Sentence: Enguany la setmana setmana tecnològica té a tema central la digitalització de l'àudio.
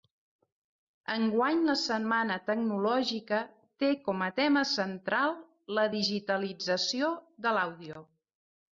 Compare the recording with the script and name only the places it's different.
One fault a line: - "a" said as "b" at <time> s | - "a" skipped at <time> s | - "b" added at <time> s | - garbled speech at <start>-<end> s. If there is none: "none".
- "setmana" skipped at 2.4 s
- "com" added at 4.1 s